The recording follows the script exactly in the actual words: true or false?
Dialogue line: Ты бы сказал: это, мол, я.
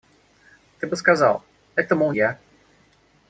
true